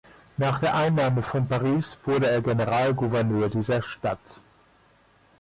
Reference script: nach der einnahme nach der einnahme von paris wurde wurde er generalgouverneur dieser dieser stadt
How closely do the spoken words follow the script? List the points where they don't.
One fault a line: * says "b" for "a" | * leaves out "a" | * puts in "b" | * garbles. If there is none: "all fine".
* leaves out "nach der einnahme"
* leaves out "wurde"
* leaves out "dieser"